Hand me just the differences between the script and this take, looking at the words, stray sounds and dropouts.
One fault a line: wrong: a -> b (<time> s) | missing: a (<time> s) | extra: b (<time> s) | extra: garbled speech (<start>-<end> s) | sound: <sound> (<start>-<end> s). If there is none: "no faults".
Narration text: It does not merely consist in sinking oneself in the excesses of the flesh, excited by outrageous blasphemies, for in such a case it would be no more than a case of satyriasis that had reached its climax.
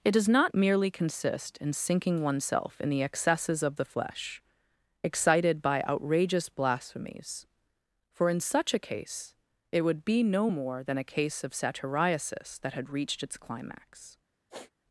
sound: sniff (14.5-14.7 s)